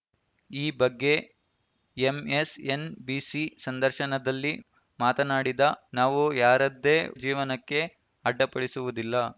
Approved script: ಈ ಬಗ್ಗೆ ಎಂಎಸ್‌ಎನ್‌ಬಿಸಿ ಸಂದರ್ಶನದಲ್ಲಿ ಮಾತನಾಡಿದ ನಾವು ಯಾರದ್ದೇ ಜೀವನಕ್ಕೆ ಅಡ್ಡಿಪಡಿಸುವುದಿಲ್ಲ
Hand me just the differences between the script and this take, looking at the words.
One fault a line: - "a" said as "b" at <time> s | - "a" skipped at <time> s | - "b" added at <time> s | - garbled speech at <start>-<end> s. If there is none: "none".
none